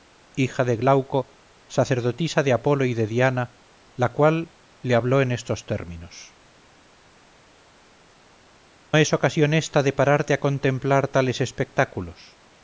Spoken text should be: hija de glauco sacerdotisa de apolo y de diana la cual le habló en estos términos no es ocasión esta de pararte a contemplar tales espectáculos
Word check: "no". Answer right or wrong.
wrong